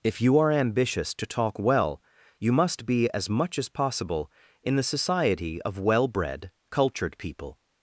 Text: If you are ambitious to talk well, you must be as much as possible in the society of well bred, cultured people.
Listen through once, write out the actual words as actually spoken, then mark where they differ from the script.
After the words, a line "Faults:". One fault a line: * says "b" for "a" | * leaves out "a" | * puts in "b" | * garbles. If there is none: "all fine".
If you are ambitious to talk well, you must be as much as possible in the society of well bred, cultured people.
Faults:
all fine